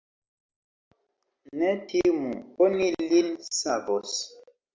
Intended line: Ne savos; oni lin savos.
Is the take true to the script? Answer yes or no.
no